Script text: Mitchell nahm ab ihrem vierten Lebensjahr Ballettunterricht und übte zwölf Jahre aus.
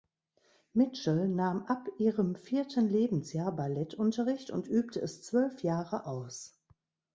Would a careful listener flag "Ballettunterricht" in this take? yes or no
no